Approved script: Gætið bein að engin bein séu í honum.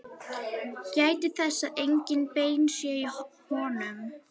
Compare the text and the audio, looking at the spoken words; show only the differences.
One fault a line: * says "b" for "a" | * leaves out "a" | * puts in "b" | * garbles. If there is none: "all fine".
* says "þess" for "bein"